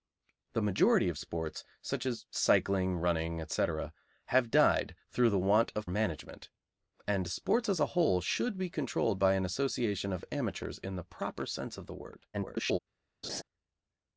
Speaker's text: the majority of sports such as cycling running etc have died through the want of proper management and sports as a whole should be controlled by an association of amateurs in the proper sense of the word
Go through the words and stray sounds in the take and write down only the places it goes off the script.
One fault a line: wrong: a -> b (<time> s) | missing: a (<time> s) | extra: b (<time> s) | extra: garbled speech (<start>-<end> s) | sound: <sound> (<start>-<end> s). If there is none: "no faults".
missing: proper (5.9 s)
extra: garbled speech (12.3-12.8 s)
sound: laugh (13.2-13.4 s)